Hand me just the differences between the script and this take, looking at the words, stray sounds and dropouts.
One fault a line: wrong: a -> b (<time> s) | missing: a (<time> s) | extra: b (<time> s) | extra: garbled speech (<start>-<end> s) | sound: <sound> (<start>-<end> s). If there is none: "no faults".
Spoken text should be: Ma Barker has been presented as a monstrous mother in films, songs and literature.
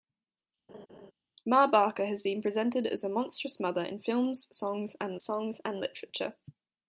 sound: laugh (0.7-1.1 s)
extra: songs and (5.2 s)